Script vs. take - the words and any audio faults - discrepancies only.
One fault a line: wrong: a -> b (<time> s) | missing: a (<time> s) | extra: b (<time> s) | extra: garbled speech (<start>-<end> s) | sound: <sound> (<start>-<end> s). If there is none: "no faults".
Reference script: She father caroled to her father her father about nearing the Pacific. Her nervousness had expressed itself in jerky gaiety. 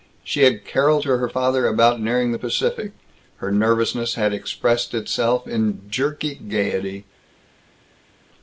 wrong: father -> had (0.5 s)
missing: her father (1.7 s)